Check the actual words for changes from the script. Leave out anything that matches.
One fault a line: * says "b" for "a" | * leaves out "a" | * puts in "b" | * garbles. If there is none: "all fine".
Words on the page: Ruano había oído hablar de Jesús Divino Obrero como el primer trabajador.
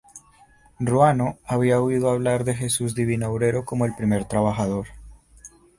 all fine